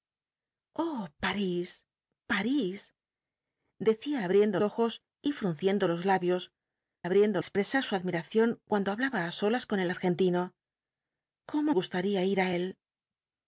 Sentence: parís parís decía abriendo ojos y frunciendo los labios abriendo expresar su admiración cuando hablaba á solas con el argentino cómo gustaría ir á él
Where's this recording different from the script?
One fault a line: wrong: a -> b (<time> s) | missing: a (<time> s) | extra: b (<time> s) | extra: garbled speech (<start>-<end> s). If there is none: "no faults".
no faults